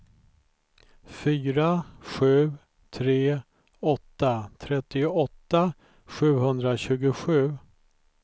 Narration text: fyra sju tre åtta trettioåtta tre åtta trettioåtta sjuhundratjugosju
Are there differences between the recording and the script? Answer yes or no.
yes